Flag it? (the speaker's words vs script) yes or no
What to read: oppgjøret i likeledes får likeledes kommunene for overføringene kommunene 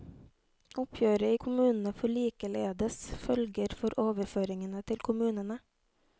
yes